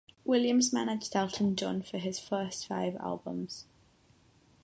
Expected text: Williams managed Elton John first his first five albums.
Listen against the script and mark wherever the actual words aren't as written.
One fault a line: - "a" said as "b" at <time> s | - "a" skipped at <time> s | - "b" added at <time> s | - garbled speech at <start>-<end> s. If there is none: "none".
- "first" said as "for" at 1.8 s